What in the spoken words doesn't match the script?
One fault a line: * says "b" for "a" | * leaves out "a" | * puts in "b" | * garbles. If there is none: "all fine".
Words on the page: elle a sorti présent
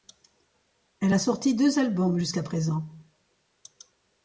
* puts in "deux albums jusqu'à"